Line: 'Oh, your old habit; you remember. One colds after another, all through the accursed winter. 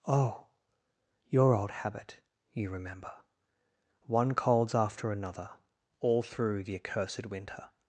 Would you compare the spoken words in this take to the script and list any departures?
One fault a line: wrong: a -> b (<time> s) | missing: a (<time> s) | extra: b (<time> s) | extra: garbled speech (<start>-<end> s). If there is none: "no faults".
no faults